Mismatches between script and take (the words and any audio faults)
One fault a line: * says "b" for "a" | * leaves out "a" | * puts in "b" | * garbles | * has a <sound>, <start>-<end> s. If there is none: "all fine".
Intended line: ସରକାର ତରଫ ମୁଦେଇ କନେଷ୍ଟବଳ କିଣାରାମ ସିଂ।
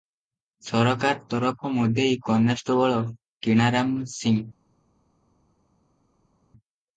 all fine